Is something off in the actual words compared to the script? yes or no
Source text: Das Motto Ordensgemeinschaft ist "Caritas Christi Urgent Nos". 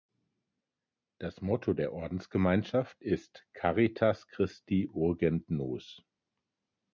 yes